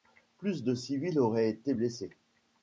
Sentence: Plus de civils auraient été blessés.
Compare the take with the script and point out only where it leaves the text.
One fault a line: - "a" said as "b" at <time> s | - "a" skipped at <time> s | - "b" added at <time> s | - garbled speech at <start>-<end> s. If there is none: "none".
none